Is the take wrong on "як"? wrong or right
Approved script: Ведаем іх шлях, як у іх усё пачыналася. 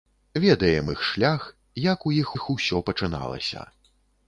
right